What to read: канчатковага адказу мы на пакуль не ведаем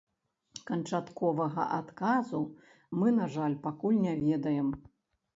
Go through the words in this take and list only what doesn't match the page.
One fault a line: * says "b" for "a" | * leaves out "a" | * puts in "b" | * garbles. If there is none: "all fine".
* puts in "жаль"